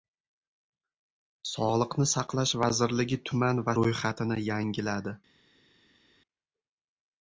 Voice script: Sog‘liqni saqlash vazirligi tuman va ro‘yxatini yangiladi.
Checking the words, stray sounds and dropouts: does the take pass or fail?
pass